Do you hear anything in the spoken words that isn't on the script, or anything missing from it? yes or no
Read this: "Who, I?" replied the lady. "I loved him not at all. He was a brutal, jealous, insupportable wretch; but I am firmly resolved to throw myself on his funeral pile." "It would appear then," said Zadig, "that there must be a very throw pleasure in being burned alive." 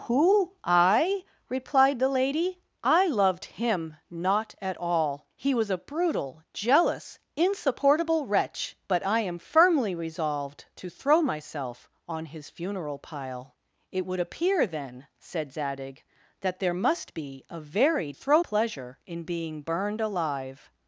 no